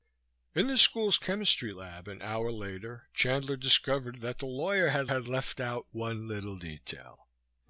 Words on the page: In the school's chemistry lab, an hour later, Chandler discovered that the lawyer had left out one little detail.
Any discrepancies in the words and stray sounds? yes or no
yes